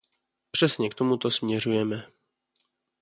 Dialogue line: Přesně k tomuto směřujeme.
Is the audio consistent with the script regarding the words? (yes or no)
yes